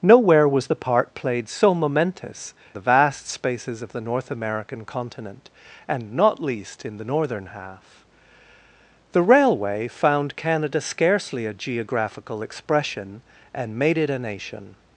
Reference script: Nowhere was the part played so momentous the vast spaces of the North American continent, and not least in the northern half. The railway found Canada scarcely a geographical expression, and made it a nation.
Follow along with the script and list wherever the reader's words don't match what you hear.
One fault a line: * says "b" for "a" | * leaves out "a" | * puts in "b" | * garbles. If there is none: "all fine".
all fine